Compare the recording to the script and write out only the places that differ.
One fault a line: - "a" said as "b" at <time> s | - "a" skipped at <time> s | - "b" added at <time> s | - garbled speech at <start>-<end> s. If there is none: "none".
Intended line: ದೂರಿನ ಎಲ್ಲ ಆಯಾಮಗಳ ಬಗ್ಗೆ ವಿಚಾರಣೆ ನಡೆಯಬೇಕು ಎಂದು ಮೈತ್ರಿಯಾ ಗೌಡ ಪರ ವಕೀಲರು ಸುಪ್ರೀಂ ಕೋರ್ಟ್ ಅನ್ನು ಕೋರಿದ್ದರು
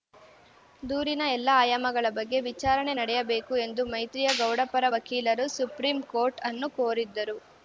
none